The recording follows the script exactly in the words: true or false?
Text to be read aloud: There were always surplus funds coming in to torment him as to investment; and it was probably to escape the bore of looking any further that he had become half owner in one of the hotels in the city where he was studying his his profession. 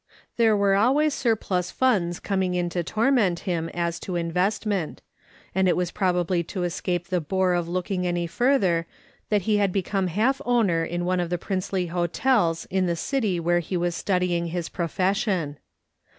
false